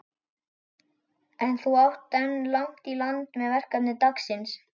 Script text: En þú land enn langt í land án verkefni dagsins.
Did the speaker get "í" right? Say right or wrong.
right